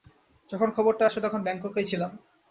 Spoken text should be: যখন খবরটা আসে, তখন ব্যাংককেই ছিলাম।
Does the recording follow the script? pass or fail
pass